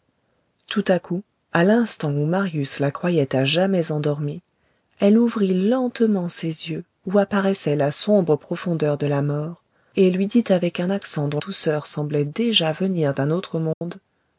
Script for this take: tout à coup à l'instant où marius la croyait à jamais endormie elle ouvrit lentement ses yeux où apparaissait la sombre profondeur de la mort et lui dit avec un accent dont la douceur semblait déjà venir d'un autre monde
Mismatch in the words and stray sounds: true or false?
true